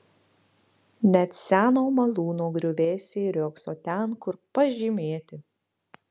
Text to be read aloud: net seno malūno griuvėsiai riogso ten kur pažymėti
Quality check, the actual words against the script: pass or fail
pass